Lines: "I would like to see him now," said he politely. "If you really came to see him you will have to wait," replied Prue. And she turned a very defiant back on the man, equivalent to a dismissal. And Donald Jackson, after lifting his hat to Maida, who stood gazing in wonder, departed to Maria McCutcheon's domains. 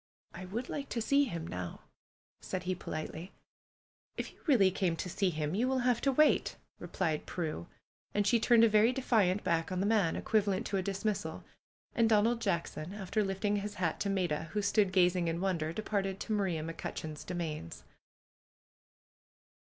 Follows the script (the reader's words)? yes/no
yes